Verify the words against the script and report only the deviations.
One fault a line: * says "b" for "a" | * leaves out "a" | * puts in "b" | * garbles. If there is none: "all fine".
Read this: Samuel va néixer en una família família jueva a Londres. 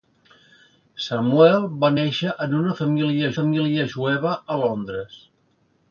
all fine